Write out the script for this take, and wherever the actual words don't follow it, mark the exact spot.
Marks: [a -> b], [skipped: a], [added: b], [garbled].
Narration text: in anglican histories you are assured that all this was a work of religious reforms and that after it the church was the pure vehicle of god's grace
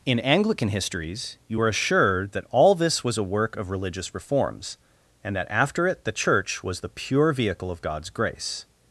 in anglican histories you are assured that all this was a work of religious reforms and that after it the church was the pure vehicle of god's grace